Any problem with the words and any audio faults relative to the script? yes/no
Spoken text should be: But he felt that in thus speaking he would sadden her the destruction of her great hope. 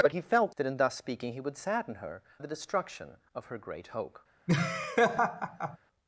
yes